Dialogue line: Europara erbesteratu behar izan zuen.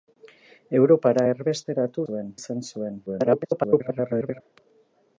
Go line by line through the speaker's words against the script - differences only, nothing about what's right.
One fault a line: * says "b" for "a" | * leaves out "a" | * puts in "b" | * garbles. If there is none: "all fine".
* says "zuen" for "behar"
* garbles